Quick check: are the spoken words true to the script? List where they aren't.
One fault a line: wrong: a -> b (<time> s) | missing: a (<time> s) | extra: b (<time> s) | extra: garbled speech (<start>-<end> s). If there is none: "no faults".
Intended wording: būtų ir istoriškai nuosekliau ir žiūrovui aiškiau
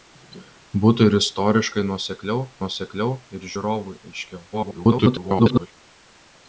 extra: nuosekliau (2.6 s)
extra: garbled speech (4.5-5.7 s)